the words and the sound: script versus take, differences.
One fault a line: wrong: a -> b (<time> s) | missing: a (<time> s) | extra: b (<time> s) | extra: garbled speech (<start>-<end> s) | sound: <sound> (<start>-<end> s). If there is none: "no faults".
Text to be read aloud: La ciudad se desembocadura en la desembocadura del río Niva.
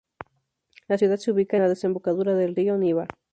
wrong: desembocadura -> ubica (1.3 s)